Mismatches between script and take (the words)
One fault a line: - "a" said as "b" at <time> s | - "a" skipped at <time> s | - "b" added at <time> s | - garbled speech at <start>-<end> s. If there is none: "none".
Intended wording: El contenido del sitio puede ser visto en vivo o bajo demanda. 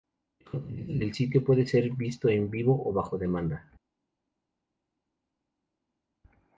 none